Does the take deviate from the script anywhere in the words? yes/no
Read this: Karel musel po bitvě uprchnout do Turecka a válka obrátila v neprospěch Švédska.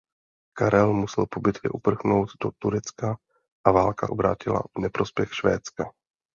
no